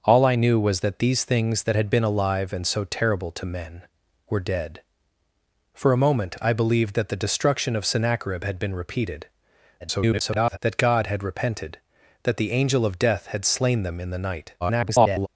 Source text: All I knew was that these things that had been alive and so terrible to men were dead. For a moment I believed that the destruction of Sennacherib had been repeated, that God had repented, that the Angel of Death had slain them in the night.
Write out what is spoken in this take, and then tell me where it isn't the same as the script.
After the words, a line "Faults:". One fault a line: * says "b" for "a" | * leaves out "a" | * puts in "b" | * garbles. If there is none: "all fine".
All I knew was that these things that had been alive and so terrible to men were dead. For a moment I believed that the destruction of Sennacherib had been repeated, [garbled] that God had repented, that the Angel of Death had slain them in the night. [garbled]
Faults:
* garbles
* garbles